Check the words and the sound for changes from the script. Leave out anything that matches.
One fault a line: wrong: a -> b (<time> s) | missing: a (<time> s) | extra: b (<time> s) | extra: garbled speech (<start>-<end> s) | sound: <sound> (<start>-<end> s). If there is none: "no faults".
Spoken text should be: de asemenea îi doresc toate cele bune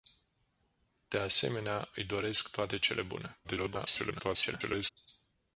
extra: garbled speech (3.4-4.9 s)